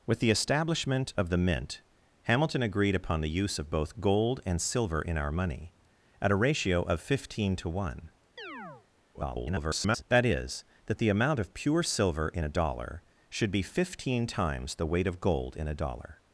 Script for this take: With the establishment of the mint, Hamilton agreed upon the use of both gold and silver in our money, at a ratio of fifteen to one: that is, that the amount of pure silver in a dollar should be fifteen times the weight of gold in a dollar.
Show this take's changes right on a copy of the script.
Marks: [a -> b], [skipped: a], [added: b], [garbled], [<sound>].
With the establishment of the mint, Hamilton agreed upon the use of both gold and silver in our money, at a ratio of fifteen to one: [chirp] [garbled] that is, that the amount of pure silver in a dollar should be fifteen times the weight of gold in a dollar.